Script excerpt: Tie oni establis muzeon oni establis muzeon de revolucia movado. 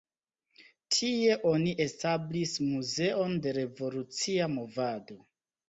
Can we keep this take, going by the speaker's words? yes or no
no